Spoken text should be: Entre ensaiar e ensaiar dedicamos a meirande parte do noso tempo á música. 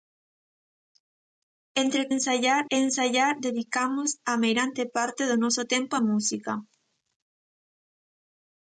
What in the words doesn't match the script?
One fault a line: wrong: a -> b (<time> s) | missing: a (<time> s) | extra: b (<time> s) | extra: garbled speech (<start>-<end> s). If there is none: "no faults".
no faults